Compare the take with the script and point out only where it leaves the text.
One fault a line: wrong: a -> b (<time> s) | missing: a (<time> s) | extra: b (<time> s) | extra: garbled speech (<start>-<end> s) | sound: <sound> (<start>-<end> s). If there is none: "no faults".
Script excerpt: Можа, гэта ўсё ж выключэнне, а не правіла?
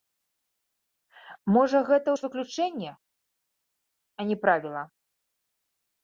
missing: ўсё (2.1 s)